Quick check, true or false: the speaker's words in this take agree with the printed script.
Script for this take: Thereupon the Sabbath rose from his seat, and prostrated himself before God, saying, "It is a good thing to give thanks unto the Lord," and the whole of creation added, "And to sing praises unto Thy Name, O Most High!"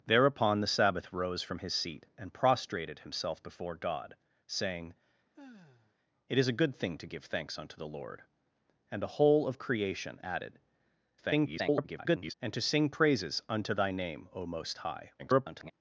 false